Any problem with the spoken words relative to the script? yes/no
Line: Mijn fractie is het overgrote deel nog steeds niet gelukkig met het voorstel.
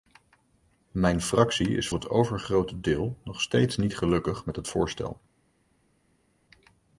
no